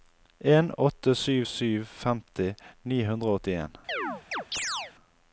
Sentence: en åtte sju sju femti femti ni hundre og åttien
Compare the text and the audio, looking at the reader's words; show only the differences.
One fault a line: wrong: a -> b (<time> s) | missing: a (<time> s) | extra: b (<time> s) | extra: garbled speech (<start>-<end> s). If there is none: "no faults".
missing: femti (2.5 s)